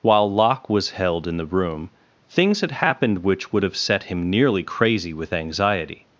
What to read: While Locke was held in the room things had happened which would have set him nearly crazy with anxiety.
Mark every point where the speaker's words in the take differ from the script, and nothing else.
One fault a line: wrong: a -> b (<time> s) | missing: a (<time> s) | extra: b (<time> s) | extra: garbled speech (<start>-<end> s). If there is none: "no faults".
no faults